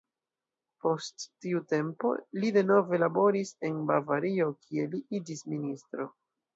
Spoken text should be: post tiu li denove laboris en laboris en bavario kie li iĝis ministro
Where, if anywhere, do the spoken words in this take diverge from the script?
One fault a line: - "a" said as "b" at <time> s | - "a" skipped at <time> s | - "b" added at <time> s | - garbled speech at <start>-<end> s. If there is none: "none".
- "tempo" added at 1.8 s
- "laboris en" skipped at 3.8 s